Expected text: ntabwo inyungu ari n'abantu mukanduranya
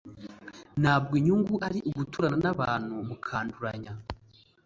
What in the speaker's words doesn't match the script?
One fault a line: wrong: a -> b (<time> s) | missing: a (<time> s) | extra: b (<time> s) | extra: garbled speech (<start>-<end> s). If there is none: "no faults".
extra: uguturana (1.9 s)